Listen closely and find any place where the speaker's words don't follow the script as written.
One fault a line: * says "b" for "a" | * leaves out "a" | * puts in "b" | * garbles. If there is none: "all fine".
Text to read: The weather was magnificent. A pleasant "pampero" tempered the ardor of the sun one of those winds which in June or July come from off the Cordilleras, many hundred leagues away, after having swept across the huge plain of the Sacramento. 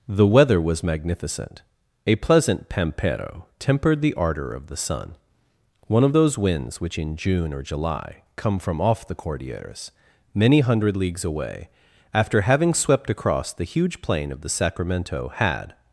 * puts in "Had"